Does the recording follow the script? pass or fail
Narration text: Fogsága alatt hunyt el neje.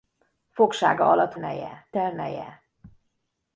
fail